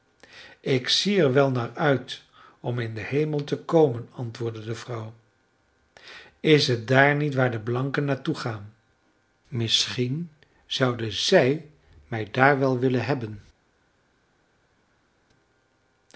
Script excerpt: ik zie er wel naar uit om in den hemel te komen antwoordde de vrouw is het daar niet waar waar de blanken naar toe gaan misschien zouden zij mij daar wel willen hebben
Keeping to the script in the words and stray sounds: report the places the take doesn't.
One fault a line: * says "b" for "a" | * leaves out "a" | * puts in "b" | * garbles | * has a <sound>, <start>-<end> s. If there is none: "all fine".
* leaves out "waar"